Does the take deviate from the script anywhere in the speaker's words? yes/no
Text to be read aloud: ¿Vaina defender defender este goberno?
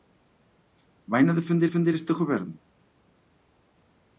no